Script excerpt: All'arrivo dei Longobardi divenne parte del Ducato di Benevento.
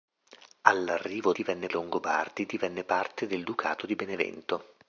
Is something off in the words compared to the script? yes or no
yes